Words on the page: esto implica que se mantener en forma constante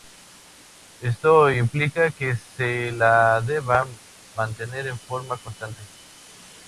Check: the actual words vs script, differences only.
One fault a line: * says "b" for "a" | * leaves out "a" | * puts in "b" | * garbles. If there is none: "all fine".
* puts in "la deba"